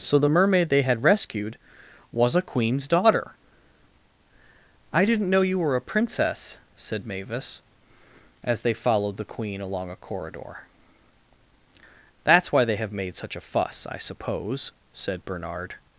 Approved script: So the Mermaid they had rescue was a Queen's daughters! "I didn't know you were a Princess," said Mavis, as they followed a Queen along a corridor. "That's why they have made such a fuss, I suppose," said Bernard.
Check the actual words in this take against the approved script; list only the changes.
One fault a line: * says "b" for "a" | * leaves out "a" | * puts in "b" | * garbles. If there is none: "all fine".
* says "rescued" for "rescue"
* says "daughter" for "daughters"
* says "the" for "a"